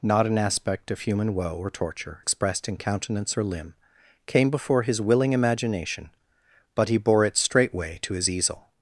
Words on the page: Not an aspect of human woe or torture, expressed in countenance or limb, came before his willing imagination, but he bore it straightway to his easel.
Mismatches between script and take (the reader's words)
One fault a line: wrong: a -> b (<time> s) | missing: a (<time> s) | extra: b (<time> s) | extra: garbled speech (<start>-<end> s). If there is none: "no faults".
no faults